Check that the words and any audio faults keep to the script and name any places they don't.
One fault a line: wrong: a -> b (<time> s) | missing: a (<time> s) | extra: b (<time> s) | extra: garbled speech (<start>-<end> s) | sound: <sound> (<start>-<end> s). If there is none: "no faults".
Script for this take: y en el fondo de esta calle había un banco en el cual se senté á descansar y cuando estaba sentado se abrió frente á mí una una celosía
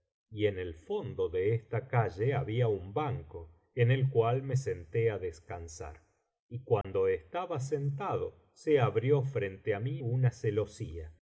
wrong: se -> me (4.4 s)
sound: dropout (6.8-6.8 s)
missing: una (10.3 s)